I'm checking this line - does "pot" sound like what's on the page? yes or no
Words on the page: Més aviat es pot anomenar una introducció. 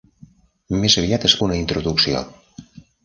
no